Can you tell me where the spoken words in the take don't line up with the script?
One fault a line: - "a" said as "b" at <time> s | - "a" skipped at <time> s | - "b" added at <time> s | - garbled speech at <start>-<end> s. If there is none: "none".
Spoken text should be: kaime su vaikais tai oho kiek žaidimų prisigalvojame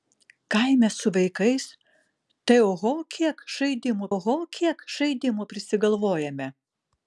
- "oho kiek žaidimų" added at 4.1 s